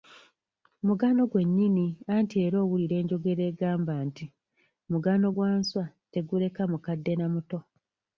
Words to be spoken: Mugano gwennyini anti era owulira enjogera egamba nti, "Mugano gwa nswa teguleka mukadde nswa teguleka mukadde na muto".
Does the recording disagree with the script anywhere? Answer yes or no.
yes